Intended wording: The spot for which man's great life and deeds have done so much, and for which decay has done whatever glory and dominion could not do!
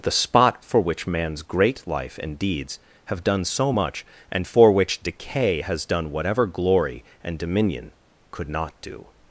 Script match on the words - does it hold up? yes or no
yes